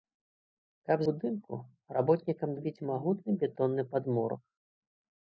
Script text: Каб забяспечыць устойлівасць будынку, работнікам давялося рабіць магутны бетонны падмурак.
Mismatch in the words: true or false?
true